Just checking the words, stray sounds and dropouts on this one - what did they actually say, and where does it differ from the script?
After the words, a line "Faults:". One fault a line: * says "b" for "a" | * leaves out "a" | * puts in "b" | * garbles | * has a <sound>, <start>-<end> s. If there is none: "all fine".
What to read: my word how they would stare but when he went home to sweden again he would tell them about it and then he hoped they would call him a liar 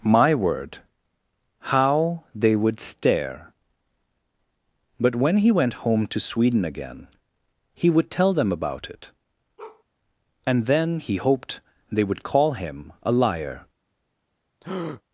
my word how they would stare but when he went home to sweden again he would tell them about it and then he hoped they would call him a liar
Faults:
* has a bark, 9.6-9.8 s
* has a breath, 14.6-15.0 s